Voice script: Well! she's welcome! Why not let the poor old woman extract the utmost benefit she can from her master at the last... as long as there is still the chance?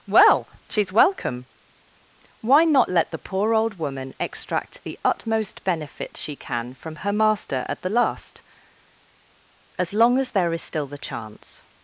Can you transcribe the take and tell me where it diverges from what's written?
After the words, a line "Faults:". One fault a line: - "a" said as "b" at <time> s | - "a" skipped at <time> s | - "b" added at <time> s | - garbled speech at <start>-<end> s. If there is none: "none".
Well! she's welcome! Why not let the poor old woman extract the utmost benefit she can from her master at the last... as long as there is still the chance?
Faults:
none